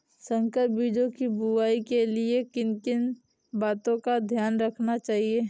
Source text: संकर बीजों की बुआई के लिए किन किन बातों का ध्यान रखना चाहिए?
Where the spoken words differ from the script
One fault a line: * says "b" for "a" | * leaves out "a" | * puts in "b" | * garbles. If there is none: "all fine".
all fine